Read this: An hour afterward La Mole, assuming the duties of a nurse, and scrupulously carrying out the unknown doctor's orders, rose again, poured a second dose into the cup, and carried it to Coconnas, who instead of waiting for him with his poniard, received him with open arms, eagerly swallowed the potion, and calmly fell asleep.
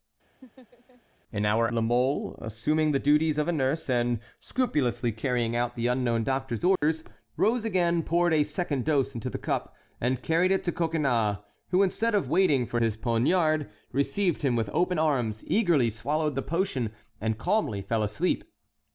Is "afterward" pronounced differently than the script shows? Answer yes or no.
yes